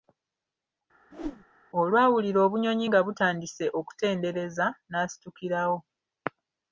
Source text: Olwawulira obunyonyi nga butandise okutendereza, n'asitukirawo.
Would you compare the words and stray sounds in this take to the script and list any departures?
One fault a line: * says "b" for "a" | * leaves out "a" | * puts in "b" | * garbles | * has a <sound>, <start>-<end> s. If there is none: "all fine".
* has a whoosh, 1.1-1.5 s